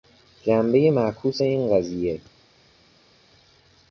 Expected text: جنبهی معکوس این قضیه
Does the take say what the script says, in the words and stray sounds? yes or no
yes